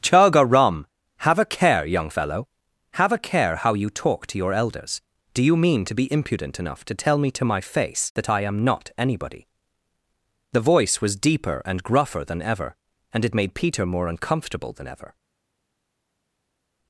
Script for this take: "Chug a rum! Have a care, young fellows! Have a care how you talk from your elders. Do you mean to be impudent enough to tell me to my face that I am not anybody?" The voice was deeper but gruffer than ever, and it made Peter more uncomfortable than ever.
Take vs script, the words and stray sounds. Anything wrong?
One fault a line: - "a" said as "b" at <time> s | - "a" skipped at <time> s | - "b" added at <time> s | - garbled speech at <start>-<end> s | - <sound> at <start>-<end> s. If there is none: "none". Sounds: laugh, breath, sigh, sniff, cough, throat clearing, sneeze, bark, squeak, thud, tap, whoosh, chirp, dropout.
- "fellows" said as "fellow" at 2.1 s
- "from" said as "to" at 4.3 s
- "but" said as "and" at 11.6 s